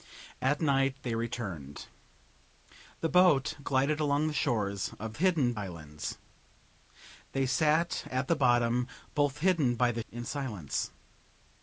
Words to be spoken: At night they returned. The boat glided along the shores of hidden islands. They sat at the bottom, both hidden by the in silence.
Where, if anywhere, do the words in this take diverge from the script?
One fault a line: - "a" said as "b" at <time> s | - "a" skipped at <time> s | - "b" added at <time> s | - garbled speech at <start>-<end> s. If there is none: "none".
none